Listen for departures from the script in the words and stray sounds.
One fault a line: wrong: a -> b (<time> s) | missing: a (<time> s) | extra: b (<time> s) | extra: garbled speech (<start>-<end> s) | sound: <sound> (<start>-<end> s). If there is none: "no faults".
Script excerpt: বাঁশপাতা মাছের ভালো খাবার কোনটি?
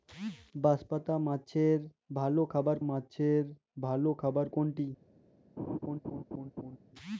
extra: মাছের ভালো খাবার (2.9 s)
sound: laugh (5.6-6.8 s)